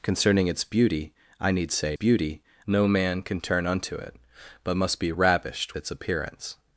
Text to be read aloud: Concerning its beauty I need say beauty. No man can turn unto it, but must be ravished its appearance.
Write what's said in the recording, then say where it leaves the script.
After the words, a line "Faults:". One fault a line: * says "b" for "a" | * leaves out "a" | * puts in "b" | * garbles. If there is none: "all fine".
Concerning its beauty I need say beauty. No man can turn unto it, but must be ravished its appearance.
Faults:
all fine